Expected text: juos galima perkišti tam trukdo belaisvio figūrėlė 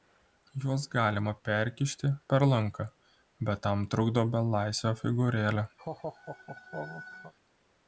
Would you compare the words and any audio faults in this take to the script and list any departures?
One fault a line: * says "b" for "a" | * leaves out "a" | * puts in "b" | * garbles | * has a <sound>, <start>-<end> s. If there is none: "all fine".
* puts in "per lanką bet"
* has a laugh, 5.8-7.3 s